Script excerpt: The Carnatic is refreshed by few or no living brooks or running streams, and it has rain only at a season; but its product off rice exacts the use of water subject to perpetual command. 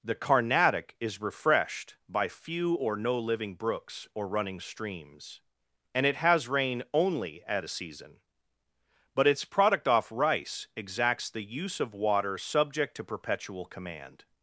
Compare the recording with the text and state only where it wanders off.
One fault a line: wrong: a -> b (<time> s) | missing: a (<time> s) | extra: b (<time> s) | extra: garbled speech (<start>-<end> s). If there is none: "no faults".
no faults